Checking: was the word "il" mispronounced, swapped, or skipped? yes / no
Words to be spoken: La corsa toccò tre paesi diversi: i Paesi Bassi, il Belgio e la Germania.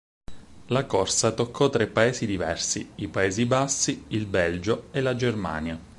no